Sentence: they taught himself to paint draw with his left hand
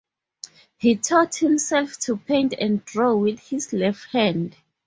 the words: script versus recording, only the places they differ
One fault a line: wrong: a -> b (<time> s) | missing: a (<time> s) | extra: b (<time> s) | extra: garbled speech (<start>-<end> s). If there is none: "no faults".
wrong: they -> he (0.8 s)
extra: and (2.6 s)